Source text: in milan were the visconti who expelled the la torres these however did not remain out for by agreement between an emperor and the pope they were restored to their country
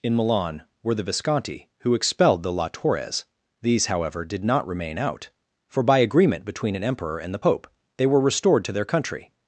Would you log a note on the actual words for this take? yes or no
no